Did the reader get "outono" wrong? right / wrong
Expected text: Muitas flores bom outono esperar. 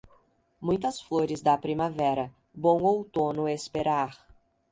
right